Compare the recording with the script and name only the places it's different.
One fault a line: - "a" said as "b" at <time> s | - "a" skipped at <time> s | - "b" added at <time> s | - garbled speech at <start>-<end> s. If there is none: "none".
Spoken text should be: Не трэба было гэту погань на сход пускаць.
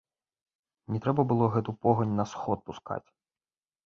none